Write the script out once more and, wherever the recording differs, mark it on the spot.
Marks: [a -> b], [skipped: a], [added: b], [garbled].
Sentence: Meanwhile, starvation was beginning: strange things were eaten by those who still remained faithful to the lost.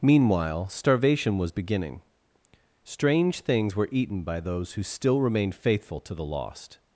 Meanwhile, starvation was beginning: strange things were eaten by those who still remained faithful to the lost.